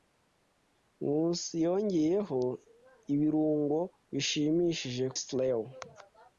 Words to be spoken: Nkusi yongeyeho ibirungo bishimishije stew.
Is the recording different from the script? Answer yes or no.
no